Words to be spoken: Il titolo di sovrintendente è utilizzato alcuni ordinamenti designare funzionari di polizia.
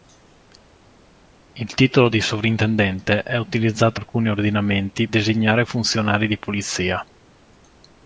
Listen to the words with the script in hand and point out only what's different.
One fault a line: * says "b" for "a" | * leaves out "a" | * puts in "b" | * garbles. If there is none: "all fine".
all fine